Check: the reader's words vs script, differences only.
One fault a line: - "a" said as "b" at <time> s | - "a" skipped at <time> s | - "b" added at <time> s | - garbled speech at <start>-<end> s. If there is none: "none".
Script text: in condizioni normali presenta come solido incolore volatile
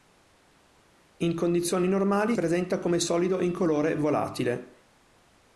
none